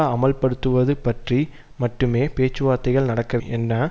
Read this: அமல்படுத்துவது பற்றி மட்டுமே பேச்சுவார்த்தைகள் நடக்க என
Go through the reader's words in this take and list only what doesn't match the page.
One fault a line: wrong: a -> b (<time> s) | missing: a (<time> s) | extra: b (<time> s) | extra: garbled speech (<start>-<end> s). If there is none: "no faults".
no faults